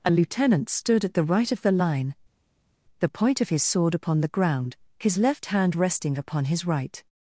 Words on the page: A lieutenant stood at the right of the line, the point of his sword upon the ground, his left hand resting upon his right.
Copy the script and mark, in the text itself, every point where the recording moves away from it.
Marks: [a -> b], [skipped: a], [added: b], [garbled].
A lieutenant stood at the right of the line, the point of his sword upon the ground, his left hand resting upon his right.